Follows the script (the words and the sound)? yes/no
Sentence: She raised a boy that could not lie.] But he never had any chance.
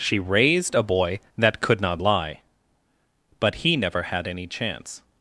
yes